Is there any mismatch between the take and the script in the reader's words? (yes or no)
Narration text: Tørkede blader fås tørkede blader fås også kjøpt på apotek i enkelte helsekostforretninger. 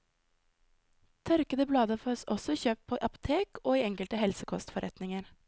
yes